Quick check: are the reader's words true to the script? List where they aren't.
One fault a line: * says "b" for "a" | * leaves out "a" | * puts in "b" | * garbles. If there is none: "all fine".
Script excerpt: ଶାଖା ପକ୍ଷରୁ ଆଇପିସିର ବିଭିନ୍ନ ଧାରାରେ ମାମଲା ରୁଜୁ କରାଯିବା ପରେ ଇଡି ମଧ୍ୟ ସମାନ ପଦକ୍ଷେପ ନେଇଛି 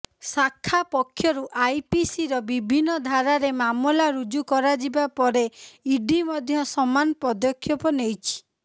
all fine